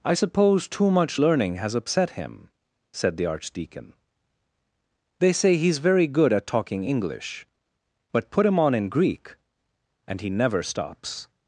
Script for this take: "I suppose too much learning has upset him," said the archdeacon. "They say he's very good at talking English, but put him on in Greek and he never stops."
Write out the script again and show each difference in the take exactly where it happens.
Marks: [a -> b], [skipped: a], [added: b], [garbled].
"I suppose too much learning has upset him," said the archdeacon. "They say he's very good at talking English, but put him on in Greek and he never stops."